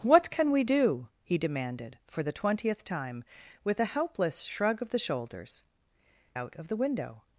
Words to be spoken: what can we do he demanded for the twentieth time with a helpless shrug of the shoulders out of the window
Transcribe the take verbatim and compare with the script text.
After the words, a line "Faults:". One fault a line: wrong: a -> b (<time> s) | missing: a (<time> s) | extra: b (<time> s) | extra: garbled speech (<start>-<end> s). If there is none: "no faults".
what can we do he demanded for the twentieth time with a helpless shrug of the shoulders out of the window
Faults:
no faults